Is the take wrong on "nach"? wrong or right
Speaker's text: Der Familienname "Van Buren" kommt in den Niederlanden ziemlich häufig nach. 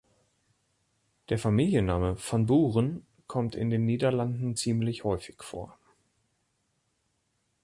wrong